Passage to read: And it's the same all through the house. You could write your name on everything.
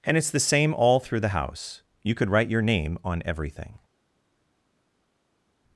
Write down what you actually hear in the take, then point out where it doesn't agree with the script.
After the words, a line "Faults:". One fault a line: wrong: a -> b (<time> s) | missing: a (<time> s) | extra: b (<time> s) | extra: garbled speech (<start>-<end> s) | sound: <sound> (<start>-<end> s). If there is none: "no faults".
And it's the same all through the house. You could write your name on everything.
Faults:
no faults